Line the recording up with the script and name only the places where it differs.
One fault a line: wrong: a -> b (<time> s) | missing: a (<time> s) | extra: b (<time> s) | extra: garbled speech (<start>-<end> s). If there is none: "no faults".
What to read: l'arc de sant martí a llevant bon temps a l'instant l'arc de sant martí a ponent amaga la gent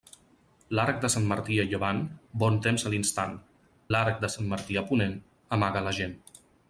no faults